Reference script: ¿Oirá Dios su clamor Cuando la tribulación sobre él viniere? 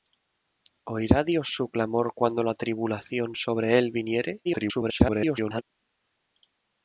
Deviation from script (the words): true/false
true